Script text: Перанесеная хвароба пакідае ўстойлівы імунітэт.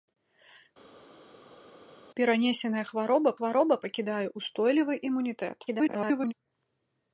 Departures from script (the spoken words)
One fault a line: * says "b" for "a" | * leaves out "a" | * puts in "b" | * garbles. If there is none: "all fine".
* puts in "хвароба"
* garbles